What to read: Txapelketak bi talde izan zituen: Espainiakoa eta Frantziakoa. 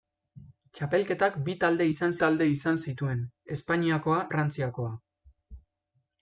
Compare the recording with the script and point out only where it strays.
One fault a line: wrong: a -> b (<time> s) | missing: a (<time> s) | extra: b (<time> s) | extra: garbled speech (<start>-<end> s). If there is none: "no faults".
extra: talde izan (2.2 s)
missing: eta (4.2 s)